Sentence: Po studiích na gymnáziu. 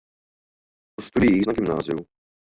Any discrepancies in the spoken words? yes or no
no